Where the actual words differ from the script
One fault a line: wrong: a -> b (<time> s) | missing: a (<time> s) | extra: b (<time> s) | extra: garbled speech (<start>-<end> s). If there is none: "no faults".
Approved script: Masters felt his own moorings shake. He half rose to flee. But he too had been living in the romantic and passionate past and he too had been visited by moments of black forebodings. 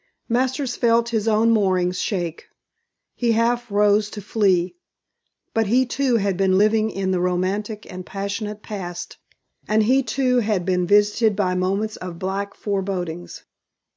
no faults